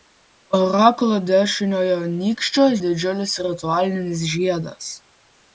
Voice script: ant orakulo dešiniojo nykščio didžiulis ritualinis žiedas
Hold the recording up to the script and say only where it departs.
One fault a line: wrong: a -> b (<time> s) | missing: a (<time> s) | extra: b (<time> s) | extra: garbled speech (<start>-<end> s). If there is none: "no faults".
no faults